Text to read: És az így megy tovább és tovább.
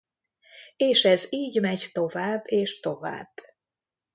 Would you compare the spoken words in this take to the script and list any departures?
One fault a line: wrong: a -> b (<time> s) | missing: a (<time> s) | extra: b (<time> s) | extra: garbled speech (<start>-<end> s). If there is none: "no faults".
wrong: az -> ez (1.1 s)